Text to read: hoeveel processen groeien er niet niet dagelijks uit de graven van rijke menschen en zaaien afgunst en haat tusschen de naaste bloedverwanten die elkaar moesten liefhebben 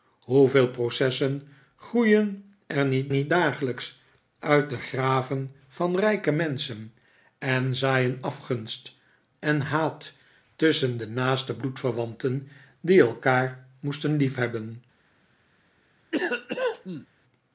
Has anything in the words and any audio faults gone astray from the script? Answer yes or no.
yes